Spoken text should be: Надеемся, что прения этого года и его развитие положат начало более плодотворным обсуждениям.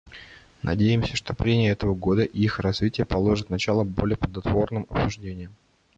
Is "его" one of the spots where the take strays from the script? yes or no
yes